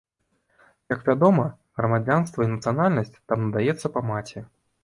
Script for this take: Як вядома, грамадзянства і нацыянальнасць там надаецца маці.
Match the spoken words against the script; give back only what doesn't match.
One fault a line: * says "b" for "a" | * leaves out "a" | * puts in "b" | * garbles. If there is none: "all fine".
* puts in "па"